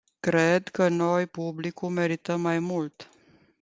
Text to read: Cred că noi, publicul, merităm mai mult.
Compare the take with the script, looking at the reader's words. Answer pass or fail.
pass